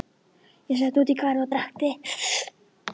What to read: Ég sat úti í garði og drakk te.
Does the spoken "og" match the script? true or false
true